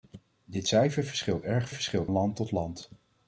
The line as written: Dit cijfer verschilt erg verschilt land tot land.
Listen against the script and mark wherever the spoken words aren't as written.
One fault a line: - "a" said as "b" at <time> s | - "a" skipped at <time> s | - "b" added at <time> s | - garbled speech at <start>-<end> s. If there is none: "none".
none